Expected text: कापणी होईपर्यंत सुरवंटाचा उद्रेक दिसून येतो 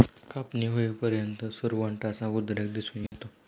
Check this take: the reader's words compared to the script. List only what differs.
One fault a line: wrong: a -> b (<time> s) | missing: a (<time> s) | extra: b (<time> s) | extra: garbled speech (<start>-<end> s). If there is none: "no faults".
no faults